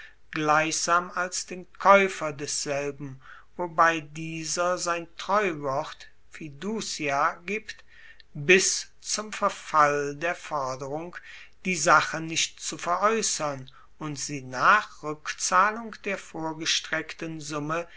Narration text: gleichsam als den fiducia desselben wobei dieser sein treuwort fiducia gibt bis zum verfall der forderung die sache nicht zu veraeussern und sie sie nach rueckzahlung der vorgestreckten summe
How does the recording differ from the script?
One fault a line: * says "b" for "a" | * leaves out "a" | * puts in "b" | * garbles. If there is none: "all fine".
* says "kaeufer" for "fiducia"
* leaves out "sie"